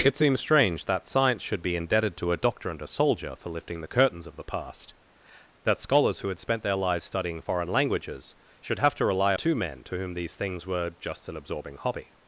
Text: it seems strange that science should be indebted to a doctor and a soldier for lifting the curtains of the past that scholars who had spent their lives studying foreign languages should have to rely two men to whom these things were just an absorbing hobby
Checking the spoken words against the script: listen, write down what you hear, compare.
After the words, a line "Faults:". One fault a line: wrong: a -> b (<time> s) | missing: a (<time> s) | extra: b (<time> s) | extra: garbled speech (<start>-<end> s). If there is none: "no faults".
it seems strange that science should be indebted to a doctor and a soldier for lifting the curtains of the past that scholars who had spent their lives studying foreign languages should have to rely two men to whom these things were just an absorbing hobby
Faults:
no faults